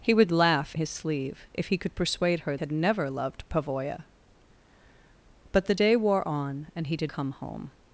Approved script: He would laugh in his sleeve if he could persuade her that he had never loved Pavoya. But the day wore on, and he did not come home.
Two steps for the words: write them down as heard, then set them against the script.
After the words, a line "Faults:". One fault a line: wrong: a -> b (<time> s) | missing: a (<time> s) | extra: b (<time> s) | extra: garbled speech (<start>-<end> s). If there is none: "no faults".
He would laugh his sleeve if he could persuade her had never loved Pavoya. But the day wore on, and he did come home.
Faults:
missing: in (0.7 s)
missing: that he (2.6 s)
missing: not (7.1 s)